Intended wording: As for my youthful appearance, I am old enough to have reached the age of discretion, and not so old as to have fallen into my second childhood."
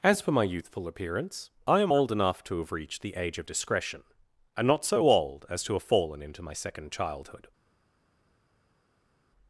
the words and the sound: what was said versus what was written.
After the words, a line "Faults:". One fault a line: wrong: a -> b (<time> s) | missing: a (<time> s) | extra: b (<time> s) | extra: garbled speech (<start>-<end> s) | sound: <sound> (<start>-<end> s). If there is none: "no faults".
As for my youthful appearance, I am old enough to have reached the age of discretion, and not so old as to have fallen into my second childhood."
Faults:
no faults